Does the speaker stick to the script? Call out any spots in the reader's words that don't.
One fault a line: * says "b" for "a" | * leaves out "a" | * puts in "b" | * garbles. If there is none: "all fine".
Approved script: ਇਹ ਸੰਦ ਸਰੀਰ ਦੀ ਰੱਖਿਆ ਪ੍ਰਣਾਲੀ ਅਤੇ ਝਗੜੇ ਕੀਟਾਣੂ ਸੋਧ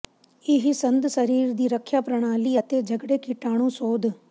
all fine